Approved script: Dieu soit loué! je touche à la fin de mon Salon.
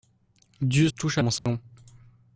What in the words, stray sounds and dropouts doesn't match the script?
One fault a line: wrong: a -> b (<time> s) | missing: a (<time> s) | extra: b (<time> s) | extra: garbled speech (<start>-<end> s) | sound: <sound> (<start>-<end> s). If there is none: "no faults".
missing: soit loué je (0.9 s)
missing: la fin de (1.2 s)
sound: dropout (1.4-1.5 s)